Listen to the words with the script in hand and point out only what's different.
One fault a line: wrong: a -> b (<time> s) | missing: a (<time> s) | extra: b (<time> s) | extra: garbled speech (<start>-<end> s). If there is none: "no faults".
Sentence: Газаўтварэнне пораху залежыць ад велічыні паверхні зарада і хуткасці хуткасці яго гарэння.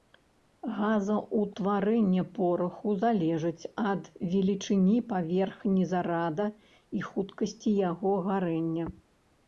missing: хуткасці (7.7 s)